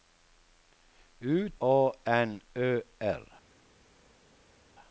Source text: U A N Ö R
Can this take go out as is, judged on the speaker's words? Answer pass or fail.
pass